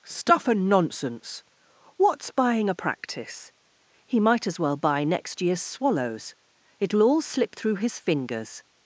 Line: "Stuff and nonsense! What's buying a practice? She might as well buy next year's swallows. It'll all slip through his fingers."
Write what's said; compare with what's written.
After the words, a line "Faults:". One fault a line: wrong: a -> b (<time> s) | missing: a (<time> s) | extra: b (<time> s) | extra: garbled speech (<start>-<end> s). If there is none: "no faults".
"Stuff and nonsense! What's buying a practice? He might as well buy next year's swallows. It'll all slip through his fingers."
Faults:
wrong: She -> He (4.0 s)